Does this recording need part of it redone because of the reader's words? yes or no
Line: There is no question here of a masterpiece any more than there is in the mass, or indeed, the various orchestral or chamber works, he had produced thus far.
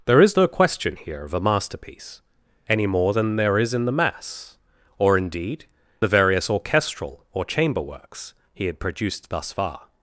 no